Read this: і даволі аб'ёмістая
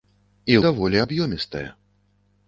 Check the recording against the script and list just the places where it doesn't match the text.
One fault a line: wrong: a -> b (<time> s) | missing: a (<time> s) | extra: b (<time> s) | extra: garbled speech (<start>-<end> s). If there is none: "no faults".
no faults